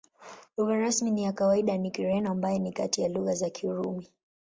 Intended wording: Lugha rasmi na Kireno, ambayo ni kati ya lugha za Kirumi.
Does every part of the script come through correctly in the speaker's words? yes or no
no